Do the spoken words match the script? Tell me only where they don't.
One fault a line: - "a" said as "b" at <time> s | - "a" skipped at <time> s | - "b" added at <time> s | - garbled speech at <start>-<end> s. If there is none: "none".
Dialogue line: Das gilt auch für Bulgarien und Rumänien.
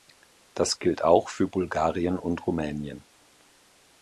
none